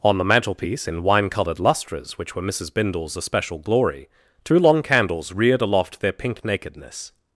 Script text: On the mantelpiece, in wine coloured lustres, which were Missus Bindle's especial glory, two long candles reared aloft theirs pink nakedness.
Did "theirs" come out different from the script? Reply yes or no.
yes